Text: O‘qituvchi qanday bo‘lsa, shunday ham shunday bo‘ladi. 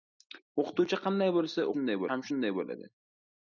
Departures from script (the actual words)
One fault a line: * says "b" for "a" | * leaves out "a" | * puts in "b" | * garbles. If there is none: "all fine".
all fine